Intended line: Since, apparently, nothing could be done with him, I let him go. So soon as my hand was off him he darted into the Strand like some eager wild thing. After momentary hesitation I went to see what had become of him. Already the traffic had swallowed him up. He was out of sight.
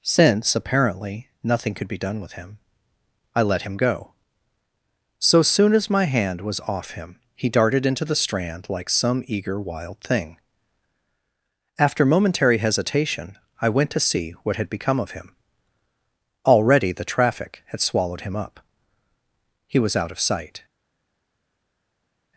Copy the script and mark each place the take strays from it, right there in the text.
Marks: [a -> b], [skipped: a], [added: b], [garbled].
Since, apparently, nothing could be done with him, I let him go. So soon as my hand was off him he darted into the Strand like some eager wild thing. After momentary hesitation I went to see what had become of him. Already the traffic had swallowed him up. He was out of sight.